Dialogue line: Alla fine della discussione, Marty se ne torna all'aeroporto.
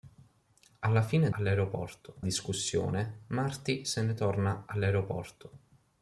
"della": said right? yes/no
no